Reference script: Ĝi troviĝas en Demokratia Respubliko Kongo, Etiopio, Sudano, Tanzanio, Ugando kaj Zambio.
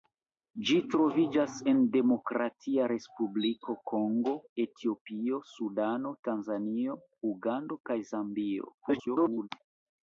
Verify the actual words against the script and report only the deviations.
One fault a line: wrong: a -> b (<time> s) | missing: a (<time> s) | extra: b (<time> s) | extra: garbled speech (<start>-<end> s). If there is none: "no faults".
extra: garbled speech (8.8-9.5 s)